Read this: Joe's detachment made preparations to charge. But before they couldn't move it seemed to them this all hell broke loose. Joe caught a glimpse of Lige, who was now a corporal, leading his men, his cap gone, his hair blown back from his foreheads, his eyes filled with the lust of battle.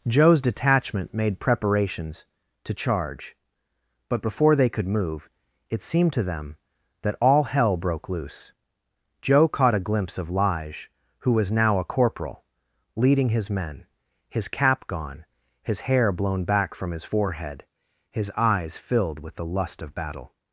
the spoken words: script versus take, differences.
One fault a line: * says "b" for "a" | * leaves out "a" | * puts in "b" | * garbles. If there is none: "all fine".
* says "could" for "couldn't"
* says "that" for "this"
* says "forehead" for "foreheads"